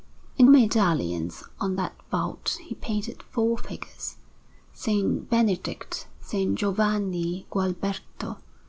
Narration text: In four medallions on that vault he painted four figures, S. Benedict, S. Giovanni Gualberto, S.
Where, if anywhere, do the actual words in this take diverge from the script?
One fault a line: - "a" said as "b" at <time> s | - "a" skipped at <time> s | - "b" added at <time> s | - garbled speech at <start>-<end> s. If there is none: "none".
- "four" skipped at 0.5 s